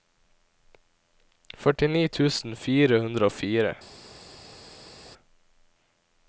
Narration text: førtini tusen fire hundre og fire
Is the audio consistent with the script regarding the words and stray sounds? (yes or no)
yes